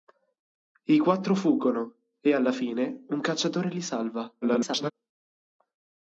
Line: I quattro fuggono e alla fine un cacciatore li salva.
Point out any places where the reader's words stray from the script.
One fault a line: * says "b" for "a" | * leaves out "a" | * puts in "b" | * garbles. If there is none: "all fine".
* garbles